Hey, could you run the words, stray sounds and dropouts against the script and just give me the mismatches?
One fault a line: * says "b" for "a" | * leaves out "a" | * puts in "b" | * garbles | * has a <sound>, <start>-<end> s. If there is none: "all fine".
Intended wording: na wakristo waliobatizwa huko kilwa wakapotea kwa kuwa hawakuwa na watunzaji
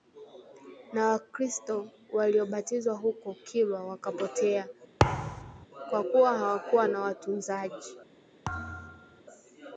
* has a thud, 5.0-5.7 s
* has a thud, 8.4-9.2 s